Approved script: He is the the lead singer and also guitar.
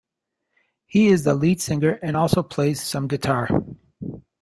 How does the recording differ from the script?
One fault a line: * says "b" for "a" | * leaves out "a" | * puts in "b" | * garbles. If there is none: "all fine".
* leaves out "the"
* puts in "plays some"